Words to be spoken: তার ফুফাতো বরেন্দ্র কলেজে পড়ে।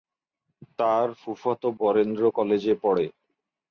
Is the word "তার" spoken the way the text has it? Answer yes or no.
yes